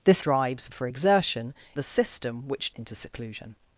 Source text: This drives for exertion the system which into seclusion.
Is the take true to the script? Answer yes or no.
yes